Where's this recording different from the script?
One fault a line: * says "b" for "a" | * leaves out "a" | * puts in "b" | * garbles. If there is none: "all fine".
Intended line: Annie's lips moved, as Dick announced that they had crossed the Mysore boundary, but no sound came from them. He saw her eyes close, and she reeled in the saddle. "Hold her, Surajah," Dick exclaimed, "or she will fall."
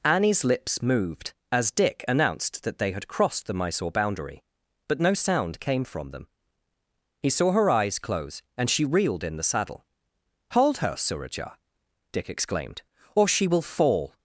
all fine